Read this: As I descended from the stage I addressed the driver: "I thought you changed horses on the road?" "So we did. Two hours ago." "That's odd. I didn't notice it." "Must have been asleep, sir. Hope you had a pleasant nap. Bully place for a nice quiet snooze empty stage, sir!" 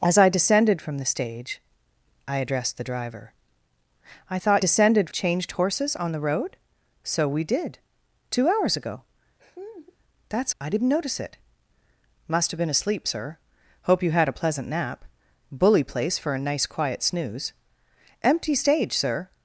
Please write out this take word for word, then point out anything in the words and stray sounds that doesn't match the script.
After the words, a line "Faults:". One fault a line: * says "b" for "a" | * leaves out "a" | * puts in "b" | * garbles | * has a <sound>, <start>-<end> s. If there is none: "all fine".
As I descended from the stage I addressed the driver: "I thought descended changed horses on the road?" "So we did. Two hours ago." "That's. I didn't notice it." "Must have been asleep, sir. Hope you had a pleasant nap. Bully place for a nice quiet snooze empty stage, sir!"
Faults:
* says "descended" for "you"
* has a laugh, 9.4-10.0 s
* leaves out "odd"